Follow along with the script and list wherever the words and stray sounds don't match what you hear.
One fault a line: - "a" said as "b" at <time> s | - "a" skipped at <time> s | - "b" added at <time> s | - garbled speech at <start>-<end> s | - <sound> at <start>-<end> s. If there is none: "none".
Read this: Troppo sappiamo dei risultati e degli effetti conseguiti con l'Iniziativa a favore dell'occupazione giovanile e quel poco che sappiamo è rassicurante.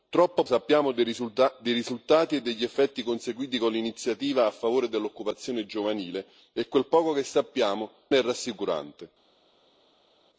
none